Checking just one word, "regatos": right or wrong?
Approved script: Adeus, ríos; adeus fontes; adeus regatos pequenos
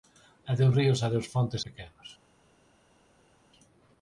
wrong